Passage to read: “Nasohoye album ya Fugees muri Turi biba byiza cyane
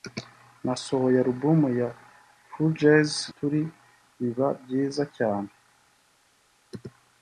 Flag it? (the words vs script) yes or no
yes